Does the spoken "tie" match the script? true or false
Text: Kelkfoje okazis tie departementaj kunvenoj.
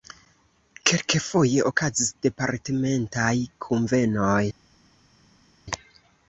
false